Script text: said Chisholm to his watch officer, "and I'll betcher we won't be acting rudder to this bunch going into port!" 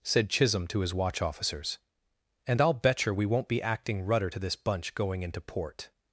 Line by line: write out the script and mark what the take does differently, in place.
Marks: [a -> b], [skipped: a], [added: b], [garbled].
said Chisholm to his watch [officer, -> officers] "and I'll betcher we won't be acting rudder to this bunch going into port!"